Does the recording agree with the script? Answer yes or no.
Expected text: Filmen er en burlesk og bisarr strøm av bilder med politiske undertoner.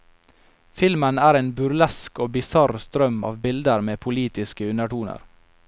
yes